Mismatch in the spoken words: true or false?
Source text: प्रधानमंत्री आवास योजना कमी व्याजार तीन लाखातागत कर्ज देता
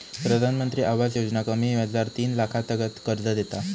false